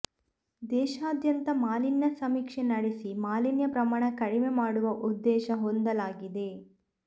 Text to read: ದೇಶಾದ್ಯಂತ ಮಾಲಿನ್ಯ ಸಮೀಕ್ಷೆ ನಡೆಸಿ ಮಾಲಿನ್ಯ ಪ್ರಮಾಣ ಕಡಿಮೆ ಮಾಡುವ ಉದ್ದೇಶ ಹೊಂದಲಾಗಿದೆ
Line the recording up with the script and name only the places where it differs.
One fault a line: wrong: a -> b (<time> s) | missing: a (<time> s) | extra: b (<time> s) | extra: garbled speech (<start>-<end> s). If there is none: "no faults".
no faults